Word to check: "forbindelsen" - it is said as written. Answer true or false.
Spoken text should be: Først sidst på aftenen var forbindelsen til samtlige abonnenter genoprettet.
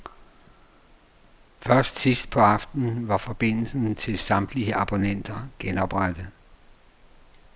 true